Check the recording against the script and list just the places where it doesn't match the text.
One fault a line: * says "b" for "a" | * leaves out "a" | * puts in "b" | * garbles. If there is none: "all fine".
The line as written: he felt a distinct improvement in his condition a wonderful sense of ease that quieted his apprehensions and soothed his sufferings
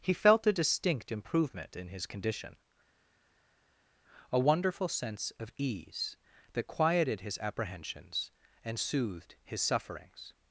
all fine